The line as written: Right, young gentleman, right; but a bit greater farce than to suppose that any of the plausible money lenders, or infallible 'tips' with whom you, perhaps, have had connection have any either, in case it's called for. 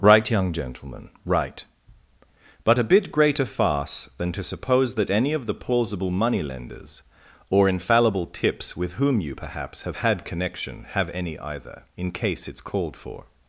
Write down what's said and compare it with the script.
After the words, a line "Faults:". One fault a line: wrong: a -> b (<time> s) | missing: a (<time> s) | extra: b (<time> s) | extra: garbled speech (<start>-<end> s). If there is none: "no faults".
Right, young gentleman, right; but a bit greater farce than to suppose that any of the plausible money lenders, or infallible 'tips' with whom you, perhaps, have had connection have any either, in case it's called for.
Faults:
no faults